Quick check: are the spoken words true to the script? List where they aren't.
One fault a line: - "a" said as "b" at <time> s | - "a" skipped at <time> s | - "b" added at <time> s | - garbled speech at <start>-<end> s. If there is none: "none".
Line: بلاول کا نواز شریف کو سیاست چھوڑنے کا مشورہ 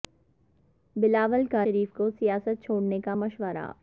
- "نواز" skipped at 1.6 s